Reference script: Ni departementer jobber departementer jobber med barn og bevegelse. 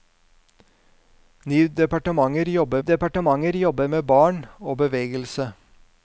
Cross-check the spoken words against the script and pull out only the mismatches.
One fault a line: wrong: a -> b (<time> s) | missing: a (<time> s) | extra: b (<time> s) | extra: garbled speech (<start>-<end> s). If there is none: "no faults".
no faults